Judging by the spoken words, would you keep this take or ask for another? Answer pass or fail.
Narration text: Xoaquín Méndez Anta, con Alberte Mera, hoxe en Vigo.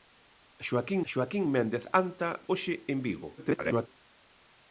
fail